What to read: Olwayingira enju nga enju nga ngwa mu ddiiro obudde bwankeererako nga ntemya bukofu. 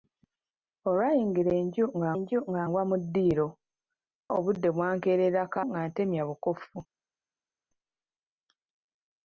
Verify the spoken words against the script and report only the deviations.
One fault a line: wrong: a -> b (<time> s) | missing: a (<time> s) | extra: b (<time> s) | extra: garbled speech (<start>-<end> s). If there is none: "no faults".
no faults